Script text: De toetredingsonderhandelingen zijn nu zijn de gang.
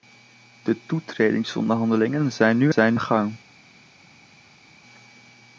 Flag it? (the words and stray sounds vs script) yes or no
no